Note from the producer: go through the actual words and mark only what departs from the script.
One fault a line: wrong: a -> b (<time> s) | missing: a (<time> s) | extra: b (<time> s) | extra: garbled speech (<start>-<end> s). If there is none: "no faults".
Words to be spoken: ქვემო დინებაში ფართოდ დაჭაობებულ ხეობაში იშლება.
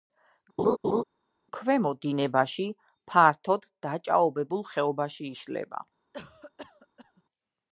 no faults